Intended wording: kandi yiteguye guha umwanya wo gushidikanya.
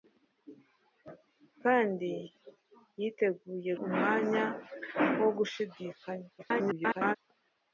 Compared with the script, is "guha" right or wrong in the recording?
wrong